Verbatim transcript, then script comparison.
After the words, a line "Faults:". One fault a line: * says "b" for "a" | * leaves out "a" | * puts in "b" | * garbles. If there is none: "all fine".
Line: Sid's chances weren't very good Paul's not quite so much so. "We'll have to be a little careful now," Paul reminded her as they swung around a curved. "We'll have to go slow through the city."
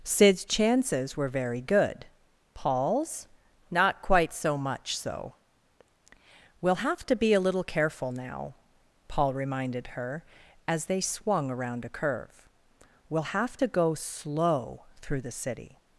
Sid's chances were very good Paul's not quite so much so. "We'll have to be a little careful now," Paul reminded her as they swung around a curve. "We'll have to go slow through the city."
Faults:
* says "were" for "weren't"
* says "curve" for "curved"